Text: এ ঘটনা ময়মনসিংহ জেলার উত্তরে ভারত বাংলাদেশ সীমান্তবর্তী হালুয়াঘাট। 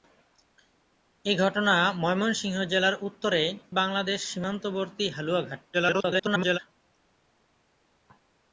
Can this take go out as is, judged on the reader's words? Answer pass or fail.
fail